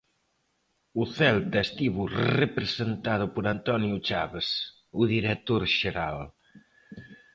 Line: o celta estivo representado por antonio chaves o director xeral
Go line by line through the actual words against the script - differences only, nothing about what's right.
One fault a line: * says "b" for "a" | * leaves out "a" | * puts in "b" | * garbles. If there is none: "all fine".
all fine